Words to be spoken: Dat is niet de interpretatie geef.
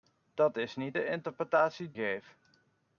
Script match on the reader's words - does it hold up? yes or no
yes